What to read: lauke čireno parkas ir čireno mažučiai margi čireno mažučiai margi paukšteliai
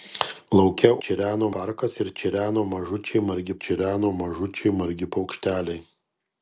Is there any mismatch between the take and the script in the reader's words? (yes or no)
no